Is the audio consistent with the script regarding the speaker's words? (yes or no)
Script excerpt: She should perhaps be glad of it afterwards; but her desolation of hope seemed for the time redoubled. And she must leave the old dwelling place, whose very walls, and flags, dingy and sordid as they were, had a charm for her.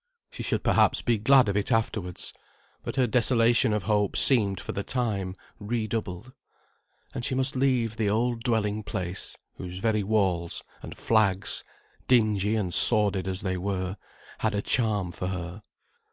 yes